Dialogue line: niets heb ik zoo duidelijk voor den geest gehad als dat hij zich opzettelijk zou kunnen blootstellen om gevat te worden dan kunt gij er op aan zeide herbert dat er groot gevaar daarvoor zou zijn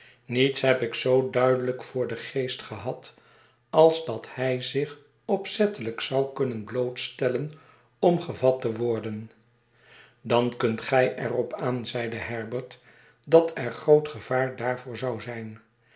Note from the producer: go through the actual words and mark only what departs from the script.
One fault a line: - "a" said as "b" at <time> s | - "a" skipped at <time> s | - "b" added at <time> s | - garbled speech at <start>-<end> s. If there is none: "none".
none